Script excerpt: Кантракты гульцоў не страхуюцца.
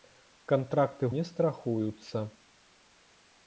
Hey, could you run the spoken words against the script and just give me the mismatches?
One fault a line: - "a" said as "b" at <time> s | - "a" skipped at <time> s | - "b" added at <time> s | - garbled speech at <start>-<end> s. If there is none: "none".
- "гульцоў" skipped at 1.1 s